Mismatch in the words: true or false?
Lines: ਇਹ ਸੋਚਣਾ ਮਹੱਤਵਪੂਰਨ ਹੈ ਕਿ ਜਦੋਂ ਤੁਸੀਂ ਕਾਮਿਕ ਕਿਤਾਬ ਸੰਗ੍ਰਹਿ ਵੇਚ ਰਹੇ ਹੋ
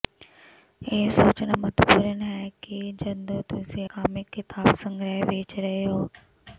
false